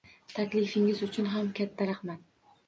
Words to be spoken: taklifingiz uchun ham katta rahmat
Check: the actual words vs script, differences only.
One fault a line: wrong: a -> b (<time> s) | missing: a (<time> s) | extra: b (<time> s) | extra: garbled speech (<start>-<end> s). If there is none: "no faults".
no faults